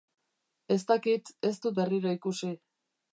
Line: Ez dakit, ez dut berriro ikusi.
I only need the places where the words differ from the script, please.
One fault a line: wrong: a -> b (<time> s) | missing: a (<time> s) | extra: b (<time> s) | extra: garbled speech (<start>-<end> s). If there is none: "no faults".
no faults